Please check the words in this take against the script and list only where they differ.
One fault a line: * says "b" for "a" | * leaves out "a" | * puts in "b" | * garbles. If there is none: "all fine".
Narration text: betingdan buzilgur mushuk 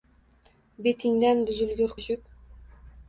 all fine